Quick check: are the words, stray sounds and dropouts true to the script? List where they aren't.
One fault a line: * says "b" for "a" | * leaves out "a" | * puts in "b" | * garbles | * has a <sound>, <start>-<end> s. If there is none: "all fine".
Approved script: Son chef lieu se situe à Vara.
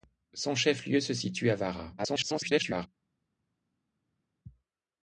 * garbles